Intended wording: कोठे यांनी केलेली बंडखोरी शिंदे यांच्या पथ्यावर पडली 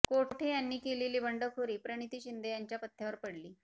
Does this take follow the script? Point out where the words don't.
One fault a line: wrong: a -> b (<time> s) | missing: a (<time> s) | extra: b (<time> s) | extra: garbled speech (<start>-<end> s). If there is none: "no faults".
extra: प्रणिती (1.8 s)